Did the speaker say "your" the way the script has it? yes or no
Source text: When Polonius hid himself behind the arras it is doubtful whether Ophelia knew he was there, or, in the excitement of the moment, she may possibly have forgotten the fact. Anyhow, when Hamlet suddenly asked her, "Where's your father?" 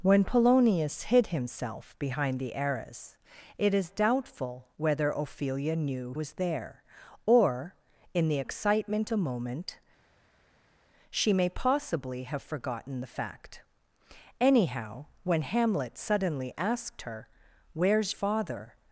no